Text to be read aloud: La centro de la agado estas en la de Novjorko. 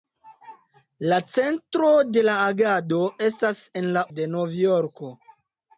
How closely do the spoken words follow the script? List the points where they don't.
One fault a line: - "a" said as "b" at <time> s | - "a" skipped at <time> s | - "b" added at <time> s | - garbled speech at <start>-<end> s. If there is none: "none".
none